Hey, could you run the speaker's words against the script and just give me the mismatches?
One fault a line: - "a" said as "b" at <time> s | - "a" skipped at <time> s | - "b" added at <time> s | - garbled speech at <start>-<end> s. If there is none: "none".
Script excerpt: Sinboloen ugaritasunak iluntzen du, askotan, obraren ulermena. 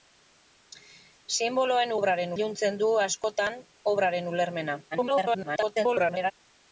- "ugaritasunak" said as "obraren" at 2.0 s
- garbled speech at 4.9-6.3 s